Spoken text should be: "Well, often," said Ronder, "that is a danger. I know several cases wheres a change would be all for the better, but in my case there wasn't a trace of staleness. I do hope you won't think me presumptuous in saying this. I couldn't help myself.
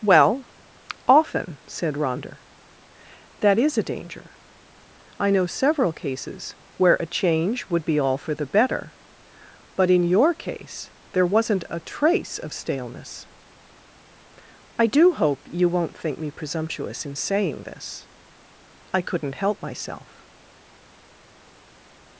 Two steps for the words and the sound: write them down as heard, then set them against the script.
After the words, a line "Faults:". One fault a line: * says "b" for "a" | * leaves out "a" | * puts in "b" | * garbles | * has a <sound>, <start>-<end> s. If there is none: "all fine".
"Well, often," said Ronder, "that is a danger. I know several cases where a change would be all for the better, but in your case there wasn't a trace of staleness. I do hope you won't think me presumptuous in saying this. I couldn't help myself.
Faults:
* says "where" for "wheres"
* says "your" for "my"